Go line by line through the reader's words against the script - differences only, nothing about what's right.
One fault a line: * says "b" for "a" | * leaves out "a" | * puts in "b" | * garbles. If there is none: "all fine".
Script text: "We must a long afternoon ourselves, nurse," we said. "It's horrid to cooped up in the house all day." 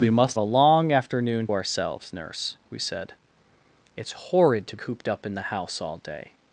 all fine